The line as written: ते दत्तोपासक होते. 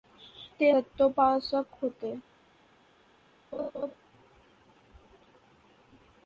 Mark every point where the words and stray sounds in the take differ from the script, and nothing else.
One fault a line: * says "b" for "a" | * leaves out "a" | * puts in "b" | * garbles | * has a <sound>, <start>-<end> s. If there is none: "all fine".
* has a laugh, 3.5-4.0 s